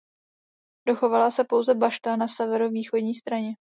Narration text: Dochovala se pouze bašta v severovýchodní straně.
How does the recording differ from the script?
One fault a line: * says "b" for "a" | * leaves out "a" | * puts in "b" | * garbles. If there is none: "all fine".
* says "na" for "v"